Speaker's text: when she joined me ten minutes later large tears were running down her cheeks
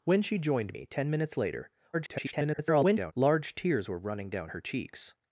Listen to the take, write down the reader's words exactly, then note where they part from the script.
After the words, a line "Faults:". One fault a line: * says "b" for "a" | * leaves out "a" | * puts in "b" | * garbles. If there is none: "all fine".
when she joined me ten minutes later [garbled] large tears were running down her cheeks
Faults:
* garbles